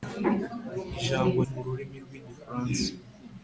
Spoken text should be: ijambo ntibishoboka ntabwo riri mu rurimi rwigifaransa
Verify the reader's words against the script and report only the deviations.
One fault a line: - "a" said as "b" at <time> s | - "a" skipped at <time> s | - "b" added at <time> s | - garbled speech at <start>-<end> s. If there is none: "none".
- "ntibishoboka ntabwo riri" skipped at 1.4 s